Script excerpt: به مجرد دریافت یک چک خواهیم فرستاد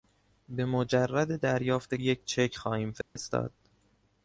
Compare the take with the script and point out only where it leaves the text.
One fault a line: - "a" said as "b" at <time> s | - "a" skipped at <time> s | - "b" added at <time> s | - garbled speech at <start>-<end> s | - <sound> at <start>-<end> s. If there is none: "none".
- dropout at 3.0-3.2 s